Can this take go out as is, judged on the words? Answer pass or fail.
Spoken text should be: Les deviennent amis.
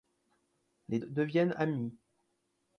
pass